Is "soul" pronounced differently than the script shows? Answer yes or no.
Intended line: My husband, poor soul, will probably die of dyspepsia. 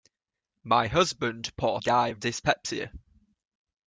yes